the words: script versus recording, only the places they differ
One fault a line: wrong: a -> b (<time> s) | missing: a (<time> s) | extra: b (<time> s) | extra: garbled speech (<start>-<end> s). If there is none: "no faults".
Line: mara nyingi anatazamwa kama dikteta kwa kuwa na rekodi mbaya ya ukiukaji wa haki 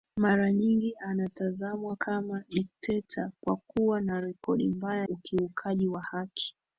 missing: ya (5.1 s)